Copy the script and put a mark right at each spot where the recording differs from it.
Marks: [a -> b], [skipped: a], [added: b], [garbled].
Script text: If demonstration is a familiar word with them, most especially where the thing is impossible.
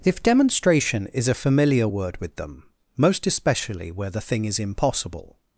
If demonstration is a familiar word with them, most especially where the thing is impossible.